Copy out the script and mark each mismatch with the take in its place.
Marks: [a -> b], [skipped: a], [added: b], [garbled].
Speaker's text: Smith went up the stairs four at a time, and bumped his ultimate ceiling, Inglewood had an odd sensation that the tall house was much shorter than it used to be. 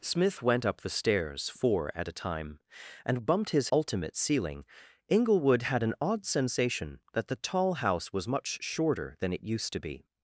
Smith went up the stairs four at a time, and bumped his ultimate ceiling, Inglewood had an odd sensation that the tall house was much shorter than it used to be.